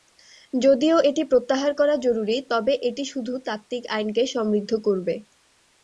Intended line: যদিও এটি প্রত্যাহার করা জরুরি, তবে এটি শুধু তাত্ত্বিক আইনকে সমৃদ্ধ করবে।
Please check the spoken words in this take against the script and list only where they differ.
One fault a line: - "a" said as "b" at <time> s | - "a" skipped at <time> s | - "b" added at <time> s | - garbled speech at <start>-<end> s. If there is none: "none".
none